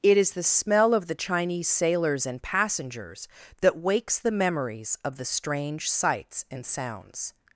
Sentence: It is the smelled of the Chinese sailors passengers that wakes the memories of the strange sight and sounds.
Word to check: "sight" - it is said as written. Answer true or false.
false